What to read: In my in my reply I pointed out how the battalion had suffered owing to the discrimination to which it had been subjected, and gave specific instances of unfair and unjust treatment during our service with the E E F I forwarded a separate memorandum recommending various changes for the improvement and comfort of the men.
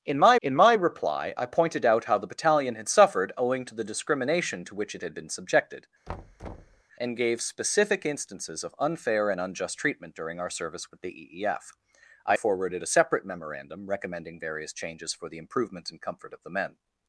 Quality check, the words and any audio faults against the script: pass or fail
fail